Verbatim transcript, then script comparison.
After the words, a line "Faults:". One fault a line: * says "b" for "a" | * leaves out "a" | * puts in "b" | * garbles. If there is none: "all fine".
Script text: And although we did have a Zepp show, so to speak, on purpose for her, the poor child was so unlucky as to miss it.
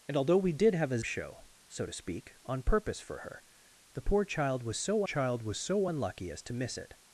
And although we did have a Show, so to speak, on purpose for her, the poor child was so child was so unlucky as to miss it.
Faults:
* leaves out "Zepp"
* puts in "child was so"